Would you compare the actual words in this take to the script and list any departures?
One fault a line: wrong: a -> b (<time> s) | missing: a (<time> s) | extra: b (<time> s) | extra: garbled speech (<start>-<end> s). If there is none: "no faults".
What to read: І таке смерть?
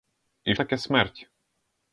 no faults